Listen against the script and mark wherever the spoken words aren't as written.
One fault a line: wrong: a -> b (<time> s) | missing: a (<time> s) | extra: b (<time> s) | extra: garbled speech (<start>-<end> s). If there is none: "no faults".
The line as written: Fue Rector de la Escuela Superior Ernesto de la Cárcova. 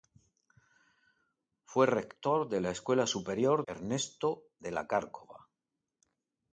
no faults